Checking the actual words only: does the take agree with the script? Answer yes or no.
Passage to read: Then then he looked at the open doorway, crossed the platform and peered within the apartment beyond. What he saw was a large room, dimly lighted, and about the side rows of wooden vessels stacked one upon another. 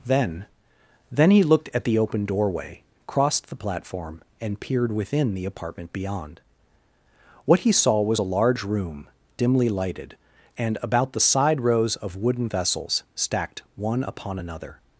yes